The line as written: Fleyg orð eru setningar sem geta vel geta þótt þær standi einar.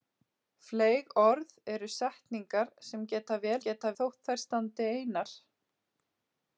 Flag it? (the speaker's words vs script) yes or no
no